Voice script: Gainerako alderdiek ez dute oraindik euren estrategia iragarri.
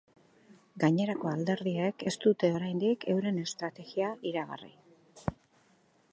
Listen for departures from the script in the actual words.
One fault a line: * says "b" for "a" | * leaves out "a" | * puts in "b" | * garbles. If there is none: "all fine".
all fine